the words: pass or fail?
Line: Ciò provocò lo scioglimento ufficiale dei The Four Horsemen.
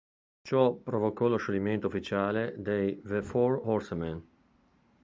pass